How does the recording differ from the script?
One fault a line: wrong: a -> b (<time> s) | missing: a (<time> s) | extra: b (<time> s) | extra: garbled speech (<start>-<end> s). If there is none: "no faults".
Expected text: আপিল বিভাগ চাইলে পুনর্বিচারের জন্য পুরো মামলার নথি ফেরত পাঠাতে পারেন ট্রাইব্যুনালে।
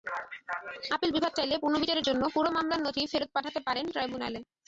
no faults